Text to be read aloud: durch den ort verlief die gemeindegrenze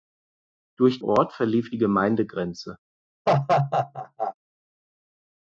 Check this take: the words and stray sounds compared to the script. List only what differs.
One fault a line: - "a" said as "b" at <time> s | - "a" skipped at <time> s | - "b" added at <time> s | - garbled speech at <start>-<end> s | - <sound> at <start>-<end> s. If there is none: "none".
- "den" skipped at 1.0 s
- laugh at 3.3-4.3 s